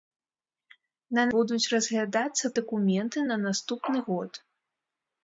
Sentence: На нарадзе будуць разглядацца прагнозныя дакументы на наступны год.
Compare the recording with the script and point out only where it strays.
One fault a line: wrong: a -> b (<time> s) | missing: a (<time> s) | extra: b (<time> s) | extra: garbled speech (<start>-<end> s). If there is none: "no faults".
missing: нарадзе (1.2 s)
missing: прагнозныя (2.5 s)